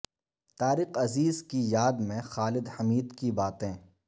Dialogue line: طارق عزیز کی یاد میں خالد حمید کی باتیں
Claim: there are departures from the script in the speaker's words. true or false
false